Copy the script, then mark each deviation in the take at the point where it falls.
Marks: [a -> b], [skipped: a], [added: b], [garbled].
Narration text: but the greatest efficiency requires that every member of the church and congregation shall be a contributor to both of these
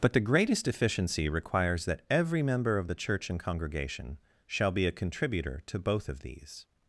but the greatest efficiency requires that every member of the church and congregation shall be a contributor to both of these